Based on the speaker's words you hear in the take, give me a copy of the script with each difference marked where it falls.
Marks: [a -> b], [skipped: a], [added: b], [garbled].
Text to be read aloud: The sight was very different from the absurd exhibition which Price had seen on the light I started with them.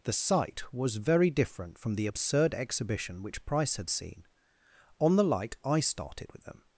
The sight was very different from the absurd exhibition which Price had seen on the light I started with them.